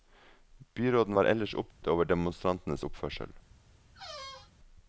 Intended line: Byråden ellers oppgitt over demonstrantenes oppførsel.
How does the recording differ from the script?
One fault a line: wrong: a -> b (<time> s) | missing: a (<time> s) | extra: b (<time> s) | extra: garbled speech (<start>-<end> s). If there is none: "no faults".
extra: var (1.1 s)